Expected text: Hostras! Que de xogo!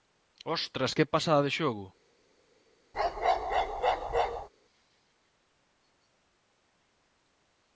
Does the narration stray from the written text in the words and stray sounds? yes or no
yes